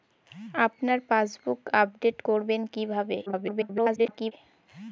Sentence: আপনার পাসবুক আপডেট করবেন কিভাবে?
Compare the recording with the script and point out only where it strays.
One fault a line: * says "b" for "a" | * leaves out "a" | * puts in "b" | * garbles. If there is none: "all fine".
* garbles